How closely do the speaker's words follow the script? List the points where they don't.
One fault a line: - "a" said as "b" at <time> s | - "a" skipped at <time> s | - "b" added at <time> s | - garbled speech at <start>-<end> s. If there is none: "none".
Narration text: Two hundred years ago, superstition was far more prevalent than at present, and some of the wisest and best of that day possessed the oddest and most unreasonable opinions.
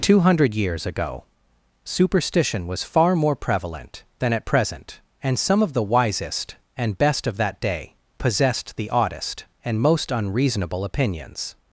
none